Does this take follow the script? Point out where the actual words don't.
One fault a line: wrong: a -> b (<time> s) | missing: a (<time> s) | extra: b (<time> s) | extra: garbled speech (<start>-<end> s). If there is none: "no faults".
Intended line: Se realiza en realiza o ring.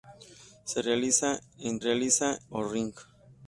no faults